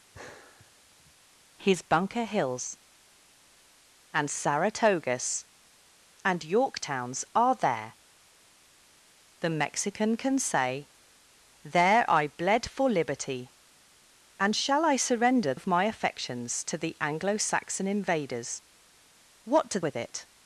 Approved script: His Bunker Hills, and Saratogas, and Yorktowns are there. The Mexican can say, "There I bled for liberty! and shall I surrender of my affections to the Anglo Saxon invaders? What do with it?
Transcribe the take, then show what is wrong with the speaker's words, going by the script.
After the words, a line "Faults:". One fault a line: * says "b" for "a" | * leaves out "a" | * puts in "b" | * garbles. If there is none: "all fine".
His Bunker Hills, and Saratogas, and Yorktowns are there. The Mexican can say, "There I bled for liberty! and shall I surrender of my affections to the Anglo Saxon invaders? What do with it?
Faults:
all fine